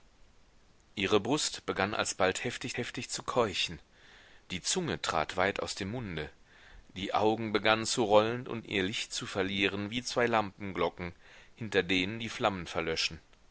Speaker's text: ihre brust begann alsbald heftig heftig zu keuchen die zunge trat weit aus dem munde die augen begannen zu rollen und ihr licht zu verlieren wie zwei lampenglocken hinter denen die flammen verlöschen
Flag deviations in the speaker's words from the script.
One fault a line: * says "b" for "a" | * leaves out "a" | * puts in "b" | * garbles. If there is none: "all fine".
all fine